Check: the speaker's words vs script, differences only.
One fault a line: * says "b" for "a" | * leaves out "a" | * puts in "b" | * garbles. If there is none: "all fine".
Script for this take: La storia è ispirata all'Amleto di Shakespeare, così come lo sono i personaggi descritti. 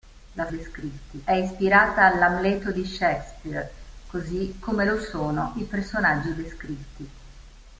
* says "descritti" for "storia"